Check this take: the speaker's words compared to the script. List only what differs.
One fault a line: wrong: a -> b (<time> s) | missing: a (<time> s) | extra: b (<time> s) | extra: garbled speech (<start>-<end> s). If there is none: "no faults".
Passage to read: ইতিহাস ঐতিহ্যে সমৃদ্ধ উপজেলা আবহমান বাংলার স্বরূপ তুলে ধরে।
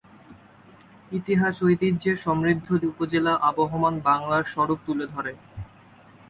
no faults